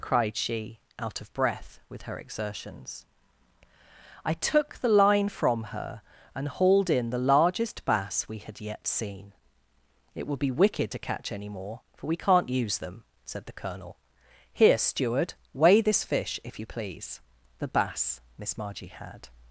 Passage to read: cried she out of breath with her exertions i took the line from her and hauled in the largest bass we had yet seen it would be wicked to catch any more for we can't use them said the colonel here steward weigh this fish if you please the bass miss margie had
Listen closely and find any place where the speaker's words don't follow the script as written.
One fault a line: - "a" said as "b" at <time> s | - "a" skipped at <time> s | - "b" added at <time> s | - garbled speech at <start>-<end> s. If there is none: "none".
none